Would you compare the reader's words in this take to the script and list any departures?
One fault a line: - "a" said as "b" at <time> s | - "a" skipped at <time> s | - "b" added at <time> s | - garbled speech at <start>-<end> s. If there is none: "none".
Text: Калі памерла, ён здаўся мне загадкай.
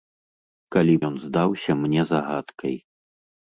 - "памерла" skipped at 0.9 s